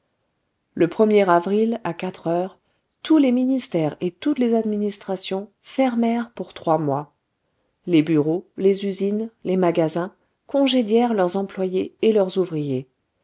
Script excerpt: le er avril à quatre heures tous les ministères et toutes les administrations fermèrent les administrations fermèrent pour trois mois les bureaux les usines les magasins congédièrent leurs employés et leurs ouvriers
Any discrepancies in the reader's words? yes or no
yes